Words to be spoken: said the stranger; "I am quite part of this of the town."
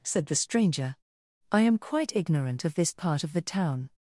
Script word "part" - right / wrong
wrong